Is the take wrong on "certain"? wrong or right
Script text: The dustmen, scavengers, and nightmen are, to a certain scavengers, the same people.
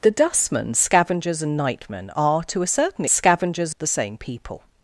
right